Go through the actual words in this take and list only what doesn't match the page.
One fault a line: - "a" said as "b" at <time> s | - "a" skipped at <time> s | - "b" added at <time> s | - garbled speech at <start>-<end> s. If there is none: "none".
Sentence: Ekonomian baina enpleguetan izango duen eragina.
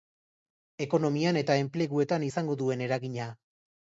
- "baina" said as "eta" at 1.4 s